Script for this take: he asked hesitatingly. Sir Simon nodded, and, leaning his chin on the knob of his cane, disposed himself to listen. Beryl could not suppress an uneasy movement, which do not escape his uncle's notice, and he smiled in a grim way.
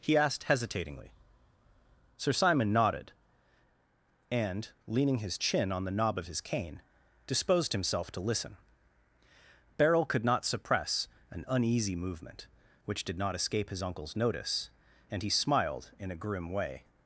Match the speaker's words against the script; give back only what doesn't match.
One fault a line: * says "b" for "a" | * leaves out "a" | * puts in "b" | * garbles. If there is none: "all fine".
* says "did" for "do"